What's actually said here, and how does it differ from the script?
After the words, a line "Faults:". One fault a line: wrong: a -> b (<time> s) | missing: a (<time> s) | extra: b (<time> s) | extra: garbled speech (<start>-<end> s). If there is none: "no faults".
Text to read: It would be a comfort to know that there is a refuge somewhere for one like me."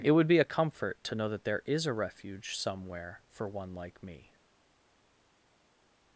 It would be a comfort to know that there is a refuge somewhere for one like me."
Faults:
no faults